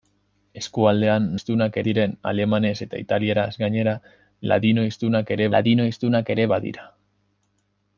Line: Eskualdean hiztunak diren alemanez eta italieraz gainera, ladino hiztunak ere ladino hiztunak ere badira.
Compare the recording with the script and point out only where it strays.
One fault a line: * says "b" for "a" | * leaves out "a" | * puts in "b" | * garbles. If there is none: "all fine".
all fine